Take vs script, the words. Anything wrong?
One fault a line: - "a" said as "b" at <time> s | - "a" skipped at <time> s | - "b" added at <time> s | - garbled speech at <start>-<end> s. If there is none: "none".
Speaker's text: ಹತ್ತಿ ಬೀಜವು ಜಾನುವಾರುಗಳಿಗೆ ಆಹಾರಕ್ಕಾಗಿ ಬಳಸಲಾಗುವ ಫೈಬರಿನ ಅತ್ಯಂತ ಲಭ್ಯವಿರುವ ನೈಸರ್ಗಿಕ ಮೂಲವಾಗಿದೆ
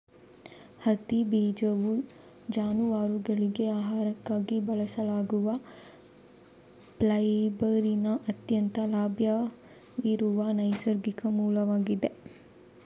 none